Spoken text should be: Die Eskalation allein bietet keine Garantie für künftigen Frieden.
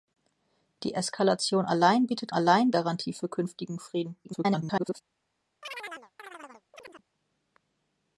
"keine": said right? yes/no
no